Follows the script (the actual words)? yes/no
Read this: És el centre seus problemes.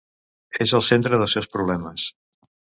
no